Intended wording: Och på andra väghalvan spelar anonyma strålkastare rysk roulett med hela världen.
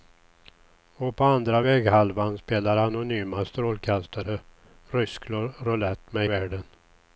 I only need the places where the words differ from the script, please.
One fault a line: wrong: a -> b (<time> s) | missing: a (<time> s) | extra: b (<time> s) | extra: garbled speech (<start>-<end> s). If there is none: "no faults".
missing: hela (6.3 s)